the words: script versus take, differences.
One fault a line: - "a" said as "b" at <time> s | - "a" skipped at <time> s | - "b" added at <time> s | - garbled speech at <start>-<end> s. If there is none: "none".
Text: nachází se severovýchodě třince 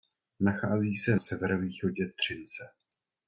none